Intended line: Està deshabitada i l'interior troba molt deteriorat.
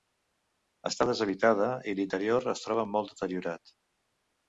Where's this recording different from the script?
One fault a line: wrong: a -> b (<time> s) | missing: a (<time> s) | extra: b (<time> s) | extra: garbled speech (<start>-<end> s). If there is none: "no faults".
extra: es (2.6 s)